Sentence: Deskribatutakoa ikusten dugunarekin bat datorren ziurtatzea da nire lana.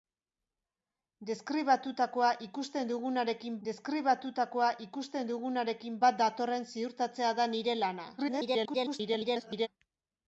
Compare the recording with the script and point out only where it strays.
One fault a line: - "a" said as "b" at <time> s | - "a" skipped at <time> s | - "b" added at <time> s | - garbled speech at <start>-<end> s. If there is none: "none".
- "deskribatutakoa ikusten dugunarekin" added at 3.7 s
- garbled speech at 8.2-9.7 s